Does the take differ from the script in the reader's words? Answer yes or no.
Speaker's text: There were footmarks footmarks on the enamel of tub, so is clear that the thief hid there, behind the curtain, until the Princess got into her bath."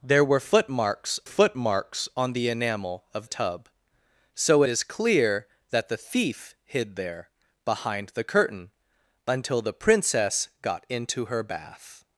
no